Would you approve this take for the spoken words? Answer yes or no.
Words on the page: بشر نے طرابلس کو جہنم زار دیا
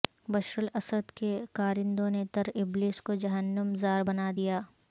no